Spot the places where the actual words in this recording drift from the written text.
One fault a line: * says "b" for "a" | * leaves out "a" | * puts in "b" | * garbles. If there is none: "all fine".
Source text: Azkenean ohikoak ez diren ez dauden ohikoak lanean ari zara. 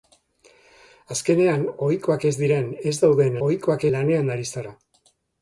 all fine